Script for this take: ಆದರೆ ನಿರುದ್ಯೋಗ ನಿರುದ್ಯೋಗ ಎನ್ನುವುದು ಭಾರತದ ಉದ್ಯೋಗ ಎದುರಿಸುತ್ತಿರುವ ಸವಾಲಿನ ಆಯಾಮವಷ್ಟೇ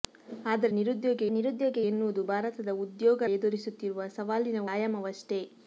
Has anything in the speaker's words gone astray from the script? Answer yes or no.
no